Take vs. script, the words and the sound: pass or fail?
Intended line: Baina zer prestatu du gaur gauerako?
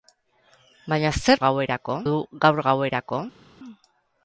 fail